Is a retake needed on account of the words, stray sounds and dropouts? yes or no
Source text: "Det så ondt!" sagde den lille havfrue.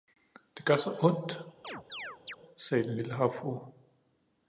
yes